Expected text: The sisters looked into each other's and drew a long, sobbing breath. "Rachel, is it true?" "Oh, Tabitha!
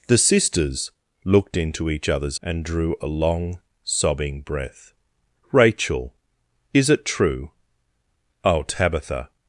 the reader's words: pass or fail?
pass